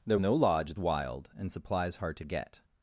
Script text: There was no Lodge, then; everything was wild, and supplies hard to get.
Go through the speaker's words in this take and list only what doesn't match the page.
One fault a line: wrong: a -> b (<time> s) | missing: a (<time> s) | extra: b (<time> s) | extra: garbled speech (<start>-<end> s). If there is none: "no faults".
missing: was (0.2 s)
missing: then everything was (0.7 s)